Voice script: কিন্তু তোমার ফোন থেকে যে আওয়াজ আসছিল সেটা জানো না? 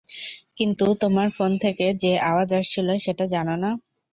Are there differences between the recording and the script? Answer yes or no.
no